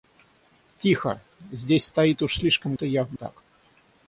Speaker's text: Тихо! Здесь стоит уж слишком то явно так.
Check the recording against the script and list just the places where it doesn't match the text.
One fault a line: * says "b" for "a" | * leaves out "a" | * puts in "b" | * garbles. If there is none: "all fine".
all fine